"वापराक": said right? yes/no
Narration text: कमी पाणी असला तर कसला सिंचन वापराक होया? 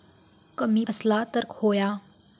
no